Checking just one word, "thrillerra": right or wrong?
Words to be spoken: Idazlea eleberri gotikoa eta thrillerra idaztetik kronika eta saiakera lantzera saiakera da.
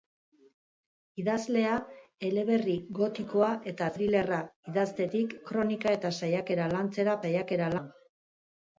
right